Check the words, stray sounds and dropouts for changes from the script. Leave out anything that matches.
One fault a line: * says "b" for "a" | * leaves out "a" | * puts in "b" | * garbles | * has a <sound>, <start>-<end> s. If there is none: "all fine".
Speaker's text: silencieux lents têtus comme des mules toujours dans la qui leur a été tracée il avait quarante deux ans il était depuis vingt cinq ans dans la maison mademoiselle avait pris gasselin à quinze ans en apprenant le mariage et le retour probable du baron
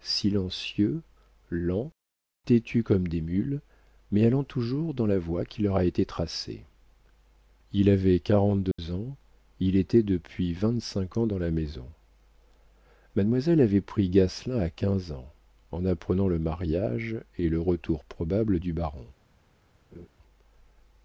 * puts in "mais allant"
* puts in "voie"
* has a dropout, 8.7-8.8 s
* has a laugh, 19.9-20.1 s